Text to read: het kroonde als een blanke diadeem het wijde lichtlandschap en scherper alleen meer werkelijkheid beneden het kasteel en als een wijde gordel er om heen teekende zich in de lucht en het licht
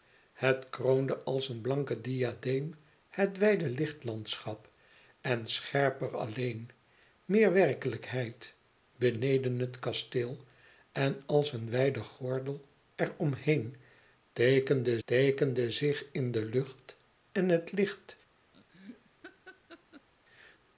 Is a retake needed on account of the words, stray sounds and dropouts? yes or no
yes